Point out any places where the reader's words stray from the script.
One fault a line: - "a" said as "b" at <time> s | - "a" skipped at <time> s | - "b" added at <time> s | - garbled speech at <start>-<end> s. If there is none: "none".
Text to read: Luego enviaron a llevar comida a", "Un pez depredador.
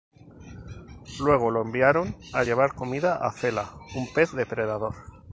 - "lo" added at 1.5 s
- "Fela" added at 3.3 s